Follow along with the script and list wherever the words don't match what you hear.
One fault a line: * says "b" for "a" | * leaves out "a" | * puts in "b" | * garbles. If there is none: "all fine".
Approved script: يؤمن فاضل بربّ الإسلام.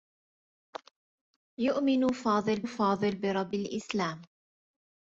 * puts in "فاضل"